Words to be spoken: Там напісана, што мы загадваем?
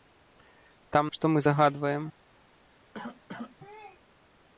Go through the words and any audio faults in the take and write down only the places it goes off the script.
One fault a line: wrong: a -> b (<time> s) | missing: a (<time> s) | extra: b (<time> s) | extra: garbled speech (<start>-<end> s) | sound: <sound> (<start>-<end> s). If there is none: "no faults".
missing: напісана (1.1 s)
sound: cough (2.9-3.6 s)